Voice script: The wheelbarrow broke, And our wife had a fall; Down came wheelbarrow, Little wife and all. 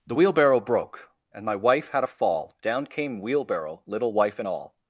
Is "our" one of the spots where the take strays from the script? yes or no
yes